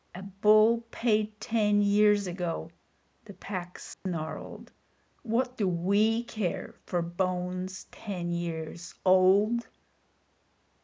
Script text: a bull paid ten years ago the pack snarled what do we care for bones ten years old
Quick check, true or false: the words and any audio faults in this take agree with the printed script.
false